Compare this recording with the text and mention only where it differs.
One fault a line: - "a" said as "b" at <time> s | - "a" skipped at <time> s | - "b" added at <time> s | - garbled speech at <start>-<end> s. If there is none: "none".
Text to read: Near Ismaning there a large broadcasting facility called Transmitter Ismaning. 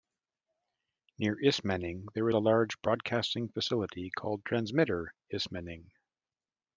none